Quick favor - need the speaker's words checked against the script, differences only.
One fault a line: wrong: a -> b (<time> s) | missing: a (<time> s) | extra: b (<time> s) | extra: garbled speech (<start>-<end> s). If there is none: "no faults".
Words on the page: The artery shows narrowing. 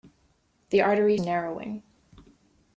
missing: shows (1.2 s)